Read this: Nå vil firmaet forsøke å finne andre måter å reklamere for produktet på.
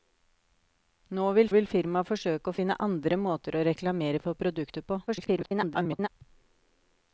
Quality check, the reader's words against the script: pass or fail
fail